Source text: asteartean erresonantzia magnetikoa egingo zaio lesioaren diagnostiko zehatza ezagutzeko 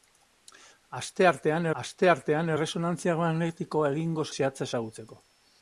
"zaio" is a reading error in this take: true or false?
true